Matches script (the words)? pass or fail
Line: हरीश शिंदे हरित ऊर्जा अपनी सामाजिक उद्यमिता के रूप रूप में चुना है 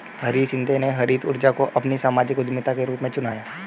fail